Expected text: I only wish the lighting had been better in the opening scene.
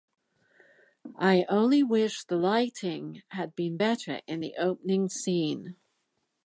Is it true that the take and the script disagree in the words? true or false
false